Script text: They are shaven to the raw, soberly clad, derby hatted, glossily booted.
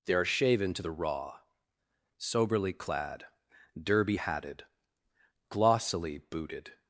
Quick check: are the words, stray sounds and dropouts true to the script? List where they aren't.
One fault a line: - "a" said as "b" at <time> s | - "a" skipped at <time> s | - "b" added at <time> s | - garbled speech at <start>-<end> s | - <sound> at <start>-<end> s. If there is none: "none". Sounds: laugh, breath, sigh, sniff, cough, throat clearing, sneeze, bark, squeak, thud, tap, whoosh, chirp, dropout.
none